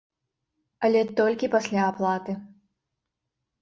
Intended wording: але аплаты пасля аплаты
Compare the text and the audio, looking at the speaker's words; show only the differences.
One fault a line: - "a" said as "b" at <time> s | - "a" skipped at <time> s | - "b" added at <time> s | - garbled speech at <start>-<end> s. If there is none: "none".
- "аплаты" said as "толькі" at 1.2 s